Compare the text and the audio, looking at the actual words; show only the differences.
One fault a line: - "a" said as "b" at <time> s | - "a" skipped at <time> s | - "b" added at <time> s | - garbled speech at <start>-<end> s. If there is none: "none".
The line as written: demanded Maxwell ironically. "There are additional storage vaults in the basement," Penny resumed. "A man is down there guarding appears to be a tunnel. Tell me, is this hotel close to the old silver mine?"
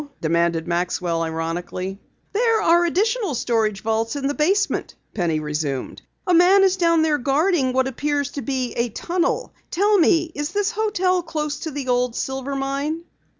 - "what" added at 7.7 s